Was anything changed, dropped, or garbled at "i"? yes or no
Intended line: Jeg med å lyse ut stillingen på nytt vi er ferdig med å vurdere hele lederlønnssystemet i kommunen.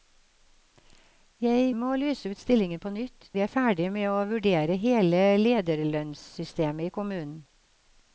no